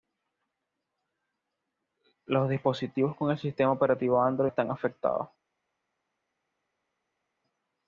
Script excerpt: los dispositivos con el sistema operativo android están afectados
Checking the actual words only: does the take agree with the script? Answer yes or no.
yes